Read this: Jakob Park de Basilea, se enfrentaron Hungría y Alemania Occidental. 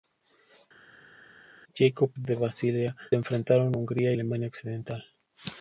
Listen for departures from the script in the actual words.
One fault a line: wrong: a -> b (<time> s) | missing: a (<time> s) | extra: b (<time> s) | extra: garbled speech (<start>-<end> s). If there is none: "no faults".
missing: Park (2.1 s)
missing: se (2.9 s)
missing: y (4.1 s)